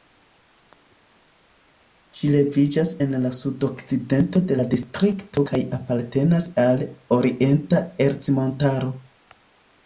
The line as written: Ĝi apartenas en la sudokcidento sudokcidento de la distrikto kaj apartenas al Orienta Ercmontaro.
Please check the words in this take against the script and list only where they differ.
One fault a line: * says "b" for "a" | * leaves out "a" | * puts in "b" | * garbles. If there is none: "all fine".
* says "leviĝas" for "apartenas"
* leaves out "sudokcidento"